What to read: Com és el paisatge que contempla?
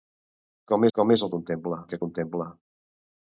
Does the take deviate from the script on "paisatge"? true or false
true